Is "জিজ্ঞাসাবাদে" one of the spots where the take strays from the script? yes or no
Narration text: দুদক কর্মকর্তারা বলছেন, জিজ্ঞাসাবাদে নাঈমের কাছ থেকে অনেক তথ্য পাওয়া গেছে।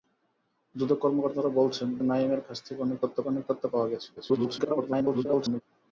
yes